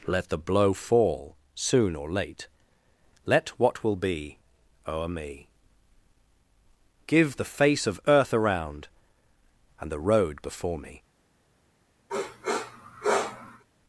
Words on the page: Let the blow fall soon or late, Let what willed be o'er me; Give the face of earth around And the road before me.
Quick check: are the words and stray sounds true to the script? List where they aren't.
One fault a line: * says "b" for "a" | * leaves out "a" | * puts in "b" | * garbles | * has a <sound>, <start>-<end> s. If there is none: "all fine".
* says "will" for "willed"
* has a sniff, 12.1-13.6 s